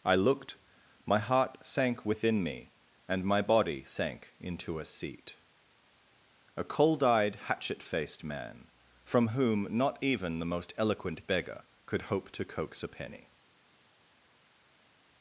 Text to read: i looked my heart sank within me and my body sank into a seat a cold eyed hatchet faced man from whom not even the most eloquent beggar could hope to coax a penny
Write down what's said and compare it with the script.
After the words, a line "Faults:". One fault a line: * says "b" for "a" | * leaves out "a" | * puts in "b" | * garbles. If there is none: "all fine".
i looked my heart sank within me and my body sank into a seat a cold eyed hatchet faced man from whom not even the most eloquent beggar could hope to coax a penny
Faults:
all fine